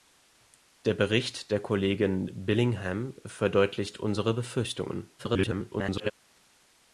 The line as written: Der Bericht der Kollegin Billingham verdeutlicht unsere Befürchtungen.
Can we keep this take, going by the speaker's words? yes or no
no